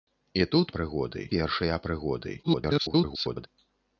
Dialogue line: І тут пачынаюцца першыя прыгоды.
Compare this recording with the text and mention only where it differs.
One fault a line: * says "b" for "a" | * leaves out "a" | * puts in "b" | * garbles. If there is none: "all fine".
* says "прыгоды" for "пачынаюцца"
* garbles